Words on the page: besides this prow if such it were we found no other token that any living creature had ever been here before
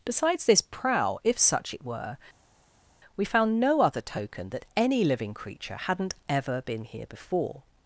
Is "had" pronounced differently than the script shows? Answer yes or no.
yes